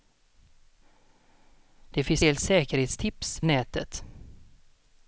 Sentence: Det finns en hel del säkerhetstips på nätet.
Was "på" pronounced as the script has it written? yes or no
no